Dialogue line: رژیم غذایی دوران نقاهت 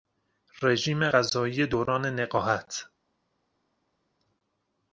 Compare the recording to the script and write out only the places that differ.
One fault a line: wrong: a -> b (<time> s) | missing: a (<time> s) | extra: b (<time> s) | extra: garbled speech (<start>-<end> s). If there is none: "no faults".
no faults